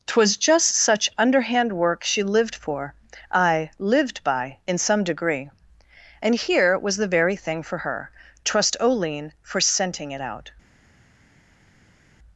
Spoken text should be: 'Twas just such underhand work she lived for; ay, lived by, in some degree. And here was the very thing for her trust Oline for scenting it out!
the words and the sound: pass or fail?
pass